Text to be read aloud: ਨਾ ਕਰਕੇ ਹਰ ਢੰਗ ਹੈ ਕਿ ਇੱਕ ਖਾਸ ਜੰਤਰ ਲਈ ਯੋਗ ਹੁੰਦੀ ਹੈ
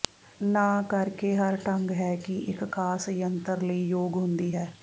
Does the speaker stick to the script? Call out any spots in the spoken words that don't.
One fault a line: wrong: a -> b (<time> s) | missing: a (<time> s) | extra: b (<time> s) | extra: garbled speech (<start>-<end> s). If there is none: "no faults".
no faults